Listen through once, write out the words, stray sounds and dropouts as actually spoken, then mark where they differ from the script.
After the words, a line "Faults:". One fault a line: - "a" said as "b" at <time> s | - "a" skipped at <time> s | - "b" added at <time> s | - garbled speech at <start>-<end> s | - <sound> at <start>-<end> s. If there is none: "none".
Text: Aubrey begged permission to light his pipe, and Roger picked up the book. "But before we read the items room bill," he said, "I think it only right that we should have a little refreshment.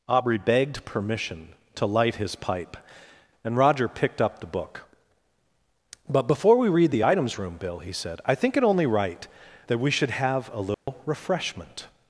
Aubrey begged permission to light his pipe, and Roger picked up the book. "But before we read the items room bill," he said, "I think it only right that we should have a little refreshment.
Faults:
- dropout at 10.7-10.9 s